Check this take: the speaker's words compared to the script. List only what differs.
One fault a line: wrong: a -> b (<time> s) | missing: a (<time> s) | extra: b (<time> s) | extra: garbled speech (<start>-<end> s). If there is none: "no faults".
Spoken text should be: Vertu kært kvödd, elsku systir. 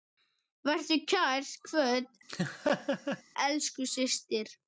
no faults